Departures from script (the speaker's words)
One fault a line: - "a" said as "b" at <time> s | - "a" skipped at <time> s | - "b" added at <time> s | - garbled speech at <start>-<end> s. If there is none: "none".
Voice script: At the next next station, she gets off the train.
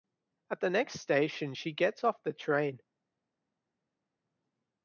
- "next" skipped at 1.0 s